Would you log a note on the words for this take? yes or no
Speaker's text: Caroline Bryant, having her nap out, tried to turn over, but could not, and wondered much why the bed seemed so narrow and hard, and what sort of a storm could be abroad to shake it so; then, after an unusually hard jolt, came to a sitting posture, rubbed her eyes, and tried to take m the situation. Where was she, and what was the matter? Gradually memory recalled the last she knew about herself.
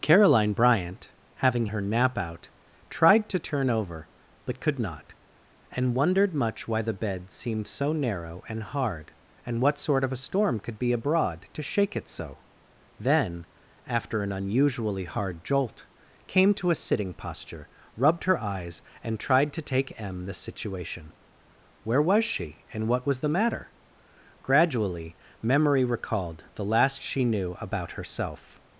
no